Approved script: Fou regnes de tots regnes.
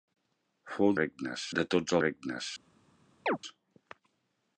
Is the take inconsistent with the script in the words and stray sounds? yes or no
yes